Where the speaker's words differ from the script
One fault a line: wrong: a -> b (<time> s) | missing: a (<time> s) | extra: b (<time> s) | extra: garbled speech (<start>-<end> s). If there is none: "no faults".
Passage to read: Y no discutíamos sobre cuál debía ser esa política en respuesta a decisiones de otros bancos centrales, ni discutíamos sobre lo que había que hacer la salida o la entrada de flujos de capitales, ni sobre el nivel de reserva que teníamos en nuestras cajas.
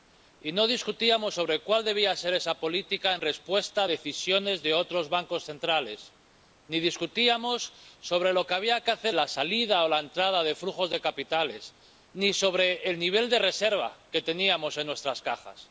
no faults